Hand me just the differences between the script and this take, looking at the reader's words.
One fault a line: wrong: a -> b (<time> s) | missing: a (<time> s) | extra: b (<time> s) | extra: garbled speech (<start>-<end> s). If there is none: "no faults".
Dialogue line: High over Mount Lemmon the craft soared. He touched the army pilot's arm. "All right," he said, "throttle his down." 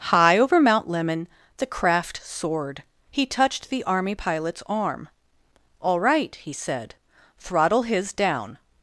no faults